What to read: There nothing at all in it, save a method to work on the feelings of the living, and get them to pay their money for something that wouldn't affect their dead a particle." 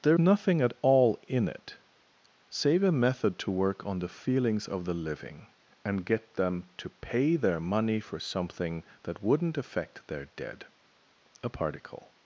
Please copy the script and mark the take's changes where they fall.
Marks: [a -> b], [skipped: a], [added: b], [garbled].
There nothing at all in it, save a method to work on the feelings of the living, and get them to pay their money for something that wouldn't affect their dead a particle."